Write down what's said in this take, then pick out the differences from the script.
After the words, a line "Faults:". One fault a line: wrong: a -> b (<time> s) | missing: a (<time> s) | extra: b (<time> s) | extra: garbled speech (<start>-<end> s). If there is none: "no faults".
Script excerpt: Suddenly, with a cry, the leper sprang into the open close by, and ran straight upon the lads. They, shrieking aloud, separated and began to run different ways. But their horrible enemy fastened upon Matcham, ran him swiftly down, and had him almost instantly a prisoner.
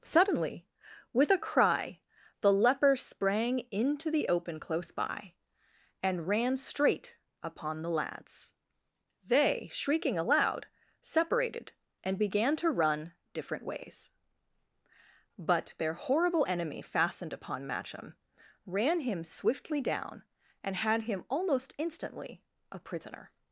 Suddenly, with a cry, the leper sprang into the open close by, and ran straight upon the lads. They, shrieking aloud, separated and began to run different ways. But their horrible enemy fastened upon Matcham, ran him swiftly down, and had him almost instantly a prisoner.
Faults:
no faults